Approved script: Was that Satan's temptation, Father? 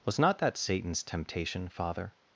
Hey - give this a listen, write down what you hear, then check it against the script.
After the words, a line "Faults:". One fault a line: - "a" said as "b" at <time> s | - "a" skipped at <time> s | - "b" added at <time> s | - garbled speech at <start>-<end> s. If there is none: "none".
Was not that Satan's temptation, Father?
Faults:
- "not" added at 0.2 s